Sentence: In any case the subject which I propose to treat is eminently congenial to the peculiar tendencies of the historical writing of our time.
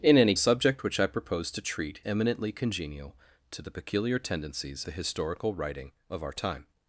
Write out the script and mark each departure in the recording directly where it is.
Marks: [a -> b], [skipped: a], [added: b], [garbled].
In any [skipped: case the] subject which I propose to treat [skipped: is] eminently congenial to the peculiar tendencies [skipped: of] the historical writing of our time.